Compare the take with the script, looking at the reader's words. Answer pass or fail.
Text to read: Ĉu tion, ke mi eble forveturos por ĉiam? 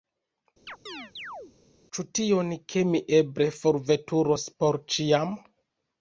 pass